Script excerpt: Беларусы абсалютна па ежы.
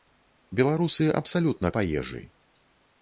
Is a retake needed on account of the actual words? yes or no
no